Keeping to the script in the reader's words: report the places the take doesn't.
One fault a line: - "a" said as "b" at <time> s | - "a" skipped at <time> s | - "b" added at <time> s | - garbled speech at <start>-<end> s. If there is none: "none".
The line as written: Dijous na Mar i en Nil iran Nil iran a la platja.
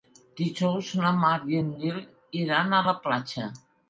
- "Nil iran" skipped at 2.7 s